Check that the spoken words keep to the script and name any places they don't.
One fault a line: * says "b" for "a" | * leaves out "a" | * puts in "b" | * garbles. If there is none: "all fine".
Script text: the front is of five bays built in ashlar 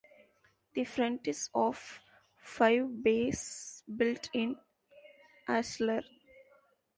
all fine